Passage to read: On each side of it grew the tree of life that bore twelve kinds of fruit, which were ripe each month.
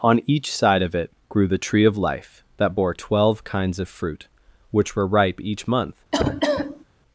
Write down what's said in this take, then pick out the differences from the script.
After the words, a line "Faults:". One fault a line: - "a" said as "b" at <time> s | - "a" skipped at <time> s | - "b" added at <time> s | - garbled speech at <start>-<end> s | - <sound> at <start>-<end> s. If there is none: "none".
On each side of it grew the tree of life that bore twelve kinds of fruit, which were ripe each month.
Faults:
- cough at 6.1-6.8 s